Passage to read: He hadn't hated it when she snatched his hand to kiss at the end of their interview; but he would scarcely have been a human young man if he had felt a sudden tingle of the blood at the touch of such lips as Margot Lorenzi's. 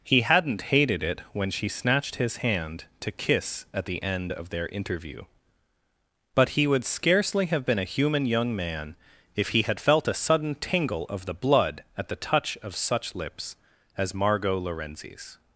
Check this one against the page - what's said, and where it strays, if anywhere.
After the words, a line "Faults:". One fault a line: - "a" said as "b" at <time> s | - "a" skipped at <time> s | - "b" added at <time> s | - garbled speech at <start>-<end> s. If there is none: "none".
He hadn't hated it when she snatched his hand to kiss at the end of their interview; but he would scarcely have been a human young man if he had felt a sudden tingle of the blood at the touch of such lips as Margot Lorenzi's.
Faults:
none